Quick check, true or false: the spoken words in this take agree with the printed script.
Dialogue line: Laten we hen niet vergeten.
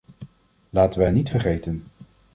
true